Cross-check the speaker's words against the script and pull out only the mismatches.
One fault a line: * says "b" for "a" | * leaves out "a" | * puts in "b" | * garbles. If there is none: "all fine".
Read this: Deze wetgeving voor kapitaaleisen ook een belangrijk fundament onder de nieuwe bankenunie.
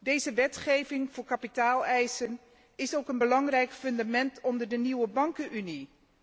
* puts in "is"